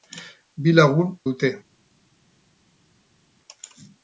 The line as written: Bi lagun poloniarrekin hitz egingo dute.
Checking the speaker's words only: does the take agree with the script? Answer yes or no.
no